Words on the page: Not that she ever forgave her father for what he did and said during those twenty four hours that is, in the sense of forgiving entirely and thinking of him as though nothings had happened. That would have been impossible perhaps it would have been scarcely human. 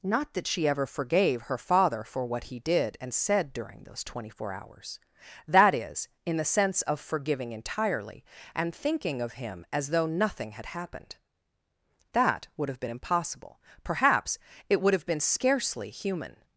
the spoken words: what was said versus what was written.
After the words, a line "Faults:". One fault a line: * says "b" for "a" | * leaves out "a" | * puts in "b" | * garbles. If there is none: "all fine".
Not that she ever forgave her father for what he did and said during those twenty four hours that is, in the sense of forgiving entirely and thinking of him as though nothing had happened. That would have been impossible perhaps it would have been scarcely human.
Faults:
* says "nothing" for "nothings"